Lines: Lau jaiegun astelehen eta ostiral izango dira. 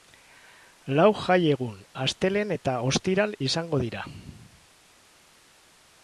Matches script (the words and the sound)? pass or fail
pass